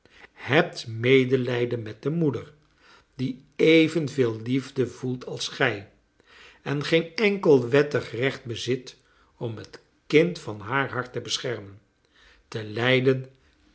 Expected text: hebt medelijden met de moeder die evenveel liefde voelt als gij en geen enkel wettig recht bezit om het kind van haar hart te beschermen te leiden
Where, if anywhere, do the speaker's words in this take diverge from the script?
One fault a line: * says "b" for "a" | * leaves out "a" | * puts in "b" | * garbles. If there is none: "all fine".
all fine